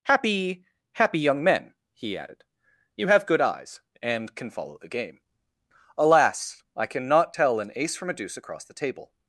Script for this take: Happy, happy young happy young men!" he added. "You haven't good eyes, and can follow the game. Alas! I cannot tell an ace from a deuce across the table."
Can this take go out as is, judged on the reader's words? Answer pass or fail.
fail